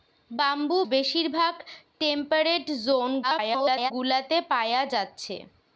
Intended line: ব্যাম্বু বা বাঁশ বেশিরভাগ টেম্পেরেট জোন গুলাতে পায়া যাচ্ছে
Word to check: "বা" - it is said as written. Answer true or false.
false